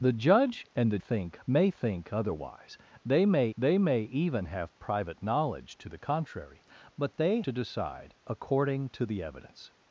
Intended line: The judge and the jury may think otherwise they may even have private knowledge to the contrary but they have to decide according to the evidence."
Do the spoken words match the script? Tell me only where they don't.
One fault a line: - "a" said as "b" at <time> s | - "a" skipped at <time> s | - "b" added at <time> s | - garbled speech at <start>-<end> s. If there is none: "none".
- "jury" said as "think" at 1.0 s
- "they may" added at 3.6 s
- "have" skipped at 7.4 s